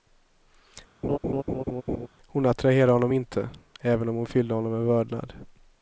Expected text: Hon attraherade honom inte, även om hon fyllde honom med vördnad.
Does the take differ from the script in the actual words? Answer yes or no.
no